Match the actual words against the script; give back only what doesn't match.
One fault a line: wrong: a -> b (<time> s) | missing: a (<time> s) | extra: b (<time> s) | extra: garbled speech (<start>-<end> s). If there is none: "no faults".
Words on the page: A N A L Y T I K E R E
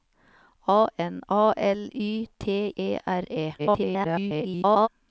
missing: I K (2.7 s)
extra: garbled speech (3.6-4.9 s)